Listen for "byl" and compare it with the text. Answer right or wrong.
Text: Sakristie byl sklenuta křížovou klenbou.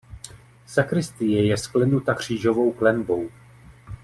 wrong